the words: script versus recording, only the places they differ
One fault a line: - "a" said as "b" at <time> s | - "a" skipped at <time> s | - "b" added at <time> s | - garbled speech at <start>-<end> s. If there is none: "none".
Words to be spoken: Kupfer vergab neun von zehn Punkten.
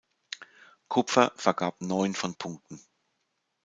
- "zehn" skipped at 2.4 s